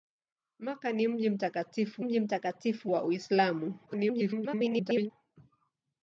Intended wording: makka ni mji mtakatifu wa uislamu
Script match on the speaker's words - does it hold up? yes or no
no